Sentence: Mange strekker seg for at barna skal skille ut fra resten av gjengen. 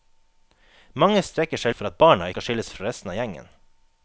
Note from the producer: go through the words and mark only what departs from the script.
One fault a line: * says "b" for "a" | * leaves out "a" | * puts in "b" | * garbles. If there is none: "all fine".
all fine